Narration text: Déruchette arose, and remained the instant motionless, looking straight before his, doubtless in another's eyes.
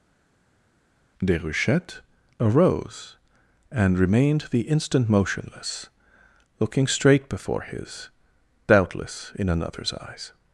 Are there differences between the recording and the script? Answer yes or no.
no